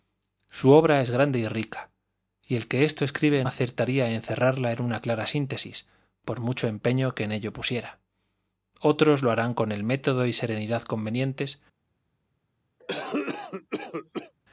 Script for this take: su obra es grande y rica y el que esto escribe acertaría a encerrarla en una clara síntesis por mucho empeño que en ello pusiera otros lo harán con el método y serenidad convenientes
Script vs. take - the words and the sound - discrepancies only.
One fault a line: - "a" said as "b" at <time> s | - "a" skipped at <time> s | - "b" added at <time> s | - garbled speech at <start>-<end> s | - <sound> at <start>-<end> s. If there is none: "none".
- cough at 12.8-14.3 s